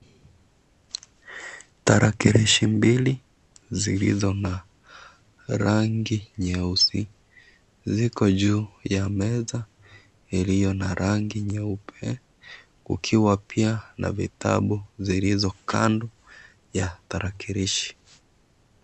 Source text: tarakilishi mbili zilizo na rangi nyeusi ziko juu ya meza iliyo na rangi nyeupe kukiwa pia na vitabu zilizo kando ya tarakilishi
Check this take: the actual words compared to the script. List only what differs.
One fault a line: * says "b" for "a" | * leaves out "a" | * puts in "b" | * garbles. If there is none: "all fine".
all fine